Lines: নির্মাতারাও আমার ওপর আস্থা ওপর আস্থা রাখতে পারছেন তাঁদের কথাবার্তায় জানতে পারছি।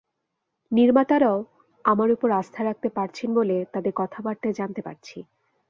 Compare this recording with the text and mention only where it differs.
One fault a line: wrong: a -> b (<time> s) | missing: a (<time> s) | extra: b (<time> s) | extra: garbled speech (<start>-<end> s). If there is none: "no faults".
missing: ওপর আস্থা (2.6 s)
extra: বলে (3.4 s)